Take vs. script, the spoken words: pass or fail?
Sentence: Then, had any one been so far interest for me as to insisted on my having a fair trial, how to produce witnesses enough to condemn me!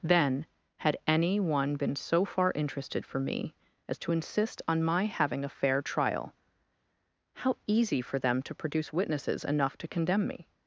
fail